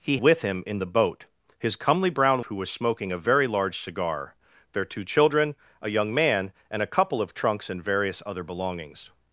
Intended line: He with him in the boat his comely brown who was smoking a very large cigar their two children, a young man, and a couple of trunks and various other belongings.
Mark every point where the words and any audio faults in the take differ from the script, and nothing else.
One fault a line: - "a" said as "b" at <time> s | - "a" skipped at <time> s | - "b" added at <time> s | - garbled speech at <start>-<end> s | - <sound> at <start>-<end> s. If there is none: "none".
none